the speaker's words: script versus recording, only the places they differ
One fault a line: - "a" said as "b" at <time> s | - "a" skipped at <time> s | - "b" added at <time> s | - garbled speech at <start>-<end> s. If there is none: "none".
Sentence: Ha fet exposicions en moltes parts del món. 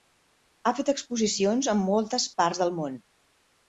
none